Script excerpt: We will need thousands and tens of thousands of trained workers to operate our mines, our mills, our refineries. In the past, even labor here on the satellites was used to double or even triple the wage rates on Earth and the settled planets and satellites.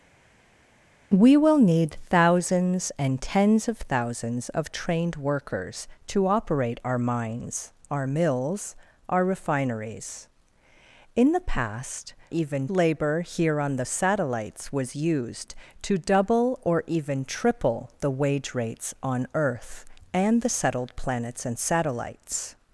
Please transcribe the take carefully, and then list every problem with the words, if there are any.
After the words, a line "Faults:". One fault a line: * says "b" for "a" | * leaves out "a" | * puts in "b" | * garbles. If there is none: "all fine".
We will need thousands and tens of thousands of trained workers to operate our mines, our mills, our refineries. In the past, even labor here on the satellites was used to double or even triple the wage rates on Earth and the settled planets and satellites.
Faults:
all fine